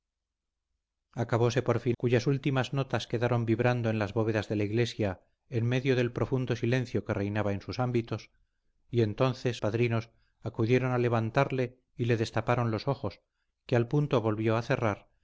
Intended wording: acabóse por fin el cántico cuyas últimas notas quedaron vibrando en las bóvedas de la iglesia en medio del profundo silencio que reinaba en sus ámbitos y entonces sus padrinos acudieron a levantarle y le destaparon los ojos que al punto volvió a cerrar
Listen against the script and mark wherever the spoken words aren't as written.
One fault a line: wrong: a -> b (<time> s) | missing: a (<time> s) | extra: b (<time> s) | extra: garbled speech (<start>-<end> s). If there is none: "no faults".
missing: el cántico (2.0 s)
missing: sus (9.6 s)